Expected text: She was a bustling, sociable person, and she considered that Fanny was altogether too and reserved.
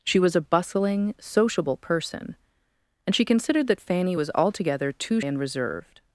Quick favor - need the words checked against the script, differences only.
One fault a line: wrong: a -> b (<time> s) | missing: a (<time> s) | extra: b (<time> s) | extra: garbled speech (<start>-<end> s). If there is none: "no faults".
no faults